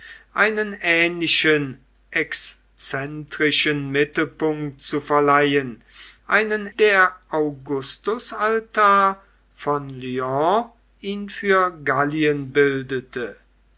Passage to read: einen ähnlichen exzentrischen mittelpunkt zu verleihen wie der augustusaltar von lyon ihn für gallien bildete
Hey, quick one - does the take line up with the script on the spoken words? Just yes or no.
no